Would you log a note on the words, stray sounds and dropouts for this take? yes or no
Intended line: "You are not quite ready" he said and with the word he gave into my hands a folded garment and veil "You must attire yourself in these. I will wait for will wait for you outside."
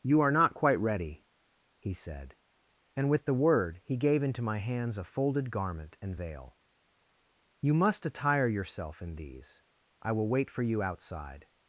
yes